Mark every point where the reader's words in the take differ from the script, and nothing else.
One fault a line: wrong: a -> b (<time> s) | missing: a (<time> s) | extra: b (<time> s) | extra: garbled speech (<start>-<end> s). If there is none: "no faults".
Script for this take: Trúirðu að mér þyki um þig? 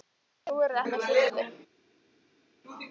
no faults